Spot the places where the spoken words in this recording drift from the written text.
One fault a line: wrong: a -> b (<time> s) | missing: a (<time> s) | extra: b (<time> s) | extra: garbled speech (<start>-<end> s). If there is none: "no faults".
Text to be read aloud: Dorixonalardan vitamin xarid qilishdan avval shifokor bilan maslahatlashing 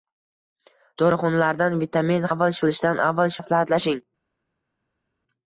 wrong: xarid -> avval (2.3 s)
missing: shifokor bilan (3.4 s)